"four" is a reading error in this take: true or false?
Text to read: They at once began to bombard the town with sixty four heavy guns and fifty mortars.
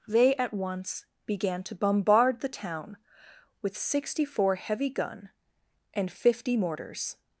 false